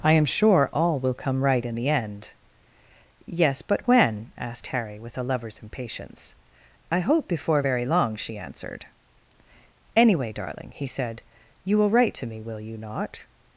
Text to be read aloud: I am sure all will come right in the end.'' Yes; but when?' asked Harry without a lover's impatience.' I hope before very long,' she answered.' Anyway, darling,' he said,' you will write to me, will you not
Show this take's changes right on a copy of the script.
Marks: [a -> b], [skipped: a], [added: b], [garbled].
I am sure all will come right in the end.'' Yes; but when?' asked Harry [without -> with] a lover's impatience.' I hope before very long,' she answered.' Anyway, darling,' he said,' you will write to me, will you not